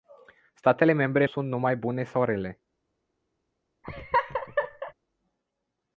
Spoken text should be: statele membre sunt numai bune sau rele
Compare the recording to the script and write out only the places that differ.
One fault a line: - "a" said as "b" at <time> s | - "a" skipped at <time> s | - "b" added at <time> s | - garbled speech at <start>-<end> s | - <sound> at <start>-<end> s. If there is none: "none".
- laugh at 3.8-4.9 s